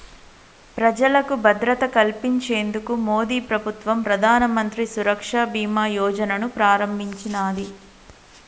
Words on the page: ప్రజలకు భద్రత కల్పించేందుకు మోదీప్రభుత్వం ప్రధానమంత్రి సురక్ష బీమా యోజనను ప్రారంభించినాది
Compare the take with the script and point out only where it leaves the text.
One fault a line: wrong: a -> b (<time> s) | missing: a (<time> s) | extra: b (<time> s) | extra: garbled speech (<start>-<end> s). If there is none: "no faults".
no faults